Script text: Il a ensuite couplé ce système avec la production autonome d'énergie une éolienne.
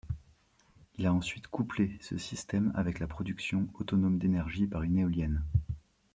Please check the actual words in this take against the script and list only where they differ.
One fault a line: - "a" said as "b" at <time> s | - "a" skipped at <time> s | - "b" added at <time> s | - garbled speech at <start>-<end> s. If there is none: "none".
- "par" added at 4.7 s